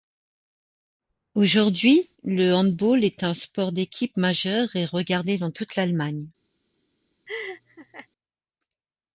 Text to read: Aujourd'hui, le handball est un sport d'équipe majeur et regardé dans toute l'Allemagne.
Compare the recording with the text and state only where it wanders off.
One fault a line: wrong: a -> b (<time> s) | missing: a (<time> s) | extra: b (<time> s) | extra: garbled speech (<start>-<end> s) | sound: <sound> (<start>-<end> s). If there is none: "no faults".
sound: laugh (7.3-8.1 s)